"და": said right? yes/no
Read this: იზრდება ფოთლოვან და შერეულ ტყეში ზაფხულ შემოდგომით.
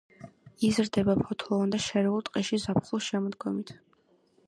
yes